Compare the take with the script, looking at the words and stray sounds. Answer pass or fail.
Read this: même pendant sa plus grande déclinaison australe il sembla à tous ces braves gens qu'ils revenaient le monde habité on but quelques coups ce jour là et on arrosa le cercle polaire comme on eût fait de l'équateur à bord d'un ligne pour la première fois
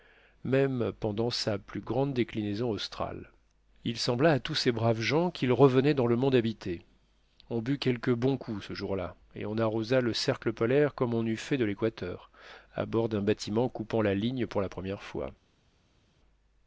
fail